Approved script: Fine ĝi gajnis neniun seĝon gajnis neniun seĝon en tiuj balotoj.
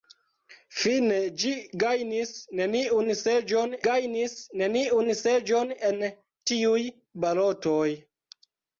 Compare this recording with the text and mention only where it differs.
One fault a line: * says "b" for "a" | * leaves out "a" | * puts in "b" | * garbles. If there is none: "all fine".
all fine